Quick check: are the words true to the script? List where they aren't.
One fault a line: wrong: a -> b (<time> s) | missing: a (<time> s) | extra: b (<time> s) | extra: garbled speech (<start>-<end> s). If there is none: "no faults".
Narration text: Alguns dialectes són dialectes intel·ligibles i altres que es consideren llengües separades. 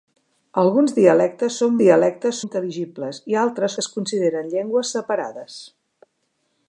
no faults